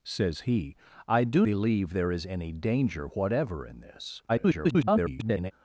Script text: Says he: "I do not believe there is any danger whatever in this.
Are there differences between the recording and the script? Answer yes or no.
yes